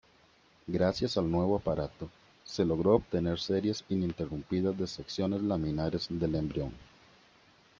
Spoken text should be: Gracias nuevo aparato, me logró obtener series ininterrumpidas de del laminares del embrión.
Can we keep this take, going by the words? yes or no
no